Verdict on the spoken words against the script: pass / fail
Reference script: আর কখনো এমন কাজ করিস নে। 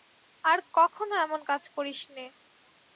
pass